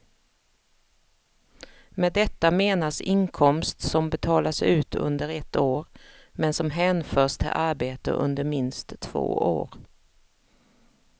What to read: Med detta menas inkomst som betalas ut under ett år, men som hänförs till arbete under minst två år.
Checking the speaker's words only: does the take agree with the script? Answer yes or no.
yes